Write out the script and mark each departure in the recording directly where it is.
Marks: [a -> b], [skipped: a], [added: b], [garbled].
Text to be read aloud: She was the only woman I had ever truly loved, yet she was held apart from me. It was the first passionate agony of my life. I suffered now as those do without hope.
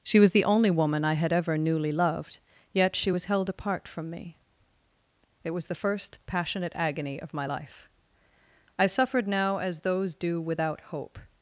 She was the only woman I had ever [truly -> newly] loved, yet she was held apart from me. It was the first passionate agony of my life. I suffered now as those do without hope.